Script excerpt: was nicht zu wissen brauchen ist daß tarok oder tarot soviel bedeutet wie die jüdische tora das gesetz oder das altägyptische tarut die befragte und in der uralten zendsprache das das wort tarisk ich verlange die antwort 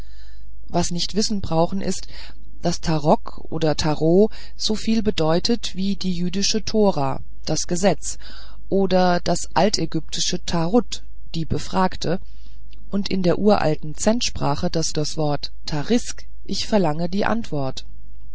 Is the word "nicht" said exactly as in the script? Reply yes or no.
yes